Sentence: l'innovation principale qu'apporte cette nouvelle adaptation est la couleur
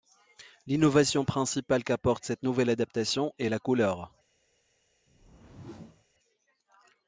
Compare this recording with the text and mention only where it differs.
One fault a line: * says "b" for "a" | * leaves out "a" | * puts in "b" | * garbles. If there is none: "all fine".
all fine